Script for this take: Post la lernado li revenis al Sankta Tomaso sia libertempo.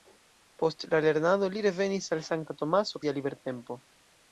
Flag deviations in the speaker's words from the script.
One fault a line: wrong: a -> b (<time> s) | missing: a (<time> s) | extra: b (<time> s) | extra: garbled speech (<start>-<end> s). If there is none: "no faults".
no faults